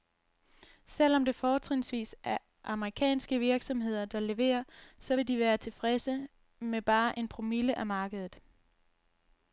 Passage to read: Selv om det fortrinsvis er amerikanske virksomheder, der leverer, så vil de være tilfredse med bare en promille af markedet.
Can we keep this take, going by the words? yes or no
yes